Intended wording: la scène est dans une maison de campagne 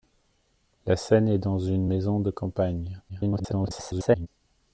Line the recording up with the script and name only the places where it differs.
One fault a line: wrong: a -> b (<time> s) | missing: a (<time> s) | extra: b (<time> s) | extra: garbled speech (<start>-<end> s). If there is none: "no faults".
extra: garbled speech (3.1-4.3 s)